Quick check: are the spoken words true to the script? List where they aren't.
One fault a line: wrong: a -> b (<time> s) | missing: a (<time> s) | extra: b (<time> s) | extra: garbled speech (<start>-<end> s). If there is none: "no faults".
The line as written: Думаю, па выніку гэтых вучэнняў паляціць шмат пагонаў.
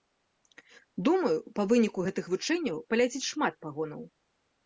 no faults